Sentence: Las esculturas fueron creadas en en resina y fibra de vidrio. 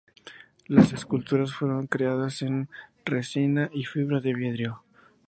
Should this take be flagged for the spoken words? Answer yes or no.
yes